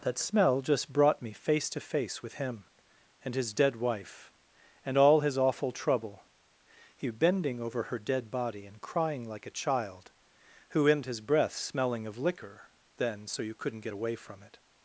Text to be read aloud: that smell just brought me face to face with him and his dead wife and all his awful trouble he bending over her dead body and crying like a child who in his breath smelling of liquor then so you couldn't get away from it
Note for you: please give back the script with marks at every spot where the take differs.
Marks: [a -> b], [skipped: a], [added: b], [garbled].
that smell just brought me face to face with him and his dead wife and all his awful trouble he bending over her dead body and crying like a child who in his breath smelling of liquor then so you couldn't get away from it